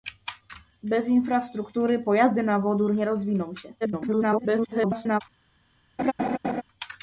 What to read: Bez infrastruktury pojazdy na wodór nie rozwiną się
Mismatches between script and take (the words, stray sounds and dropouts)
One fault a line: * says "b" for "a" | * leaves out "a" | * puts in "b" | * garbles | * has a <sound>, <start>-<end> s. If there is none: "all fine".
* garbles
* has a laugh, 6.0-6.6 s